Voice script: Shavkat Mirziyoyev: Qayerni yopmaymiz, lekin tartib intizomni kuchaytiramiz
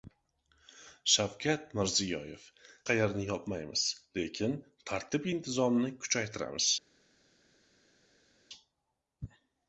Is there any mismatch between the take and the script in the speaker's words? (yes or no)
no